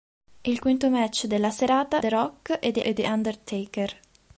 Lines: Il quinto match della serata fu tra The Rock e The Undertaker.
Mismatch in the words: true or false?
true